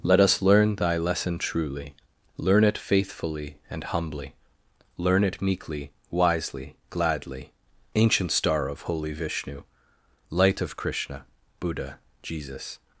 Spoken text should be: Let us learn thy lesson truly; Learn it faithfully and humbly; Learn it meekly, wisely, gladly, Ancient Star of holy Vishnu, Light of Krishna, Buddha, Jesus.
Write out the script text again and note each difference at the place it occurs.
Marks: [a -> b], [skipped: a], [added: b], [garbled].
Let us learn thy lesson truly; Learn it faithfully and humbly; Learn it meekly, wisely, gladly, Ancient Star of holy Vishnu, Light of Krishna, Buddha, Jesus.